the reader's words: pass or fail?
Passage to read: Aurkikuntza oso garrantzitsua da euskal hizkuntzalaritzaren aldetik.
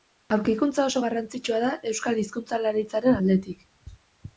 pass